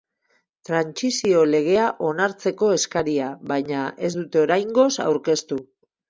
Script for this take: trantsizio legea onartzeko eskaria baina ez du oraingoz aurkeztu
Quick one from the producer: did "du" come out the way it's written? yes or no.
no